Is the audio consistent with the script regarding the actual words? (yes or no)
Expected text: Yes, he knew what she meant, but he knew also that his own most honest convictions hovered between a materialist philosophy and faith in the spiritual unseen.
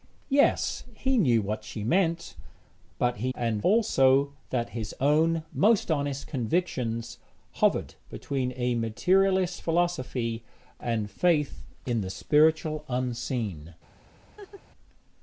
no